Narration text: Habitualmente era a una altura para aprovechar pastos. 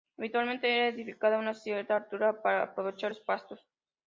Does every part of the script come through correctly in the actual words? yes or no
no